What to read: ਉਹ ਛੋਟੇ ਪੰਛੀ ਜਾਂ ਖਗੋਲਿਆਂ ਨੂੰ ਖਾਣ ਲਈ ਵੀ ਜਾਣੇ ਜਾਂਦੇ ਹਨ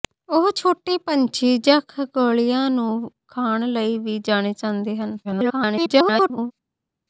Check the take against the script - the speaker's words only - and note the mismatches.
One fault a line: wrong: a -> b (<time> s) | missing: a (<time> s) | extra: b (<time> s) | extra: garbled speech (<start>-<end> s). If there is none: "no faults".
extra: garbled speech (5.2-6.5 s)